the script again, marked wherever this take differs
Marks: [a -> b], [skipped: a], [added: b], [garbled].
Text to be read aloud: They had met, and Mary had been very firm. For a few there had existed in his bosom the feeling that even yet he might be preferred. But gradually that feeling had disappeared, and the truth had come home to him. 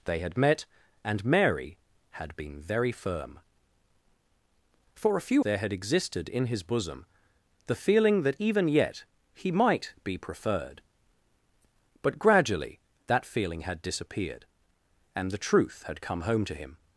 They had met, and Mary had been very firm. For a few there had existed in his bosom the feeling that even yet he might be preferred. But gradually that feeling had disappeared, and the truth had come home to him.